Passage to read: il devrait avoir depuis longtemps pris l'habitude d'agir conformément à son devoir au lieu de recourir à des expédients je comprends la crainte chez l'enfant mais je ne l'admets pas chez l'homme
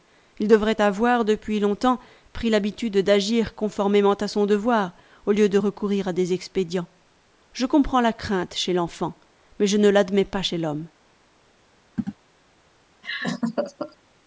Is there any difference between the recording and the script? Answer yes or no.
no